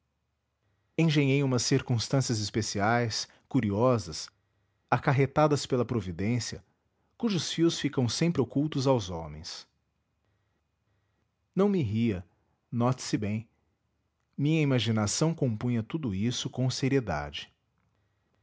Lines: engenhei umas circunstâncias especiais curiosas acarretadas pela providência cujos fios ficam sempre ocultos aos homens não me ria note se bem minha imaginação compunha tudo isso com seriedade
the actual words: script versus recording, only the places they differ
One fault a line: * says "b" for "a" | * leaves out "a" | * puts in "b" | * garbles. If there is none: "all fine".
all fine